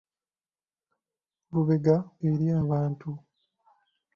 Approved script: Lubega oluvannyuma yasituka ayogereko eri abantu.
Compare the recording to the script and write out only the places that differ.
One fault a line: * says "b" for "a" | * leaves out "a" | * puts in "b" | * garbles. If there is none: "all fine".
* leaves out "oluvannyuma yasituka ayogereko"